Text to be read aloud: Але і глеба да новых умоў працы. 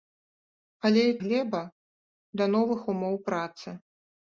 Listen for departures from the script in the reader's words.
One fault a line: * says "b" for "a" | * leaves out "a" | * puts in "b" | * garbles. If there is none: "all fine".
all fine